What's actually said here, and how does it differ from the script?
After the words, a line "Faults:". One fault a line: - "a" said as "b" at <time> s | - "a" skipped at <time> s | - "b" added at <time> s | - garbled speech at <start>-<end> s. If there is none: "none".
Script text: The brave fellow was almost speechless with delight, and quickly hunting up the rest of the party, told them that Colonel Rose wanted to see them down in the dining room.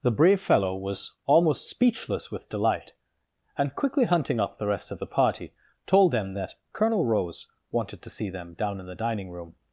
The brave fellow was almost speechless with delight, and quickly hunting up the rest of the party, told them that Colonel Rose wanted to see them down in the dining room.
Faults:
none